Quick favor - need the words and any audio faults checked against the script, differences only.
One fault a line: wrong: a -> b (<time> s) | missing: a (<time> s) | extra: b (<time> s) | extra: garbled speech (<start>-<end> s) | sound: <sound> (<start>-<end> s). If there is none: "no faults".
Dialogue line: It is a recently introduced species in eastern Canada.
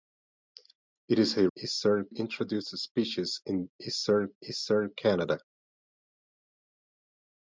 wrong: recently -> eastern (1.6 s)
extra: eastern (4.4 s)